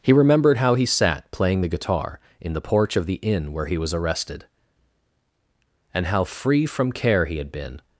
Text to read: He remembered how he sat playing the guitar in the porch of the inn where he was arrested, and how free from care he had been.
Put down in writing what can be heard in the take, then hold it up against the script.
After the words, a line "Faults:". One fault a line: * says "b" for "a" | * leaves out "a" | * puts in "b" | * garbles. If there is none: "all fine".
He remembered how he sat playing the guitar in the porch of the inn where he was arrested, and how free from care he had been.
Faults:
all fine